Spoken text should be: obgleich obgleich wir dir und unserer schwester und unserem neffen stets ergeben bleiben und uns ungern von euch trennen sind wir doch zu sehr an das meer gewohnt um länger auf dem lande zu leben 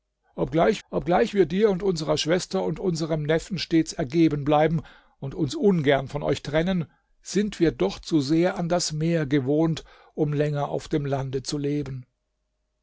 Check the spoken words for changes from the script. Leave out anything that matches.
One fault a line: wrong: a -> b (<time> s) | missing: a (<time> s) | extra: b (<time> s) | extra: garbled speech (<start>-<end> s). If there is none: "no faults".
no faults